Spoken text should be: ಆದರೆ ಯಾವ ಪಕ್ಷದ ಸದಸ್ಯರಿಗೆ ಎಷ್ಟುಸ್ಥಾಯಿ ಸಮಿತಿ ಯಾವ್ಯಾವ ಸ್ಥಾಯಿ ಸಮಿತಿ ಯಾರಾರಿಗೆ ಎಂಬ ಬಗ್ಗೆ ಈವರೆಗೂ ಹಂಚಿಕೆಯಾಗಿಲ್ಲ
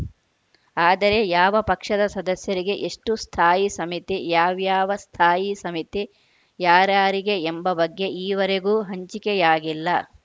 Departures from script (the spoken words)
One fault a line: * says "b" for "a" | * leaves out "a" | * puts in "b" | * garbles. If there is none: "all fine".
all fine